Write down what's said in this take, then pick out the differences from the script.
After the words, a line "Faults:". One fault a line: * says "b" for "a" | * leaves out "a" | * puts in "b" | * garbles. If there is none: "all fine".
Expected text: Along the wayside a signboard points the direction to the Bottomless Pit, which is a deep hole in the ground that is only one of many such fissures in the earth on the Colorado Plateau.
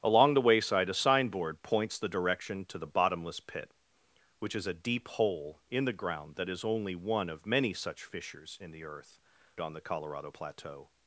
Along the wayside a signboard points the direction to the Bottomless Pit, which is a deep hole in the ground that is only one of many such fissures in the earth on the Colorado Plateau.
Faults:
all fine